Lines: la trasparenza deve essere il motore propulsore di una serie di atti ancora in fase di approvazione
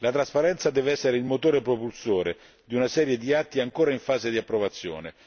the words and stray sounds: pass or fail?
pass